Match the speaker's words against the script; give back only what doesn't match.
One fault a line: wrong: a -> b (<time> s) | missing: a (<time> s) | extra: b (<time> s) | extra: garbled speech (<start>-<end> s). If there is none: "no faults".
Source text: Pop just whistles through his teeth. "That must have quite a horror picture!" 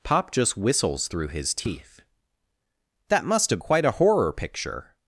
no faults